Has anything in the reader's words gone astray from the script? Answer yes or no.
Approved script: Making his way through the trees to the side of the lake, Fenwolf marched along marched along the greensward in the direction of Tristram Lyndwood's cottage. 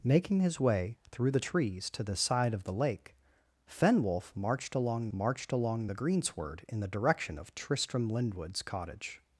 no